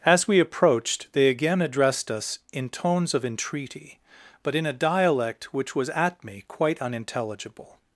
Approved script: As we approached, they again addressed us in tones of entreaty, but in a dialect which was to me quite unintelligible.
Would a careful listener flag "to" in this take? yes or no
yes